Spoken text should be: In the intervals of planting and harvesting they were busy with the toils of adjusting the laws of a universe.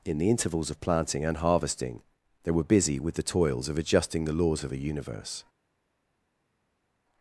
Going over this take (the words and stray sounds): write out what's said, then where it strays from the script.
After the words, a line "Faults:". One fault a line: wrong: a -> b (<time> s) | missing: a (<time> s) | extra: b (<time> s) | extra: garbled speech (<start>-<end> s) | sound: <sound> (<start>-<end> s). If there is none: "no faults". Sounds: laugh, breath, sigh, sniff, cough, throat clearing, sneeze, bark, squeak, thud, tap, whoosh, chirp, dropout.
In the intervals of planting and harvesting they were busy with the toils of adjusting the laws of a universe.
Faults:
no faults